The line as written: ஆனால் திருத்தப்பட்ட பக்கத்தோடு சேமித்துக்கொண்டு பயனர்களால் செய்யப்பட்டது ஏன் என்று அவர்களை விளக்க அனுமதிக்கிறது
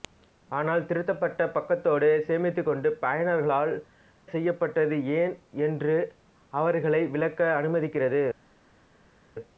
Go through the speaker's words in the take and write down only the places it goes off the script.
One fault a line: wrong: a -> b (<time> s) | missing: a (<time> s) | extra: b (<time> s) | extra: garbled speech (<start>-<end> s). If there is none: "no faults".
no faults